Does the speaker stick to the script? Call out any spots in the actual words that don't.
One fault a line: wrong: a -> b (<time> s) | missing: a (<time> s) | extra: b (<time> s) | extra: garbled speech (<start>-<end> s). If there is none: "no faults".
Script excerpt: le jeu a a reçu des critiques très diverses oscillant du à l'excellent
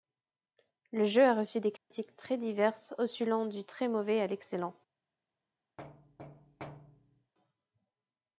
missing: a (1.4 s)
extra: très mauvais (3.6 s)